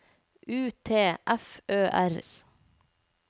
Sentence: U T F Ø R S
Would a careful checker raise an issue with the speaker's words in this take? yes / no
no